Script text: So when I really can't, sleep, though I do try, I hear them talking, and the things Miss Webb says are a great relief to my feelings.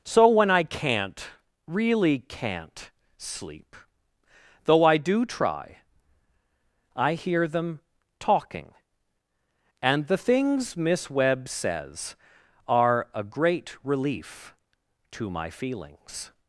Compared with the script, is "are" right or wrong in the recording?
right